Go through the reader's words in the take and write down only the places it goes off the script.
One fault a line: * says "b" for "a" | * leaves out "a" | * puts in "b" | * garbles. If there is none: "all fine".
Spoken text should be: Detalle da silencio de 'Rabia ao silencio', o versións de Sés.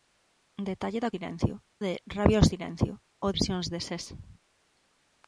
all fine